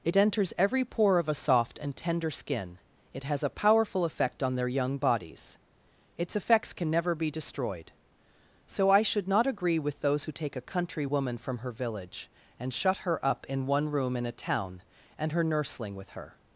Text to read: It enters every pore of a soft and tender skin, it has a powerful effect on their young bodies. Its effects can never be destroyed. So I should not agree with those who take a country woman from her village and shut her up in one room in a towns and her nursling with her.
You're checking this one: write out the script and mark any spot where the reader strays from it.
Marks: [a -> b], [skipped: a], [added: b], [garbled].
It enters every pore of a soft and tender skin, it has a powerful effect on their young bodies. Its effects can never be destroyed. So I should not agree with those who take a country woman from her village and shut her up in one room in a [towns -> town] and her nursling with her.